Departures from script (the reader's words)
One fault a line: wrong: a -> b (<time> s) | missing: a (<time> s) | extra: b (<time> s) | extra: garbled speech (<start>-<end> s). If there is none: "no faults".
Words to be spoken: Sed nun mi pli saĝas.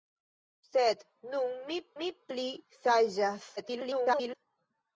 extra: mi (2.0 s)
extra: garbled speech (3.6-4.4 s)